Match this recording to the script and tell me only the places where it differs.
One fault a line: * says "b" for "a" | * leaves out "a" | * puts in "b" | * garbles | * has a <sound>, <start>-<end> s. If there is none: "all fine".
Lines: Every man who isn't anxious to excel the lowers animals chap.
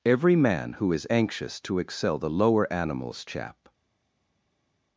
* says "is" for "isn't"
* says "lower" for "lowers"